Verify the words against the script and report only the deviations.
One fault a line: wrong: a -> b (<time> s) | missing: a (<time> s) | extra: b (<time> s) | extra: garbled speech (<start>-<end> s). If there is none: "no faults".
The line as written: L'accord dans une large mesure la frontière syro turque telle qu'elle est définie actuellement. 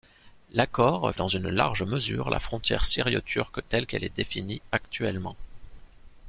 no faults